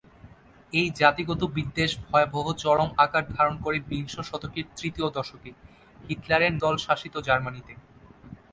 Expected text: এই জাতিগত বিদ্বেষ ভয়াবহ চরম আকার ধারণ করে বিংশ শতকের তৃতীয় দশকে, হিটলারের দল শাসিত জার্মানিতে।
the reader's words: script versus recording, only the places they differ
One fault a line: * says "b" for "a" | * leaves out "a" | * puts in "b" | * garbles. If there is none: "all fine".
all fine